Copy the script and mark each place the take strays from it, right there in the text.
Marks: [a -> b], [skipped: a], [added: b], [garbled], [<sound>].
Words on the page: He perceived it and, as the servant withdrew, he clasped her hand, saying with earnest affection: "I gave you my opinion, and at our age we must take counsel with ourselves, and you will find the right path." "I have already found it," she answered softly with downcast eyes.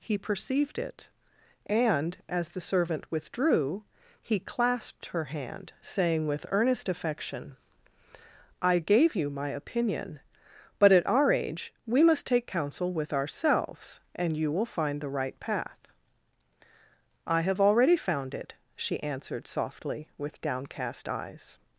He perceived it and, as the servant withdrew, he clasped her hand, saying with earnest affection: "I gave you my opinion, [and -> but] at our age we must take counsel with ourselves, and you will find the right path." "I have already found it," she answered softly with downcast eyes.